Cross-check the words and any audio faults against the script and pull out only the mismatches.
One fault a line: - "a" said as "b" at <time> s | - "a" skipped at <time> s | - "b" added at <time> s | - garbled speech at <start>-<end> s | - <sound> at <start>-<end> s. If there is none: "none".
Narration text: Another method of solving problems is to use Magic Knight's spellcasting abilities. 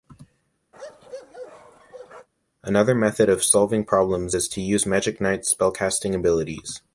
- bark at 0.7-2.3 s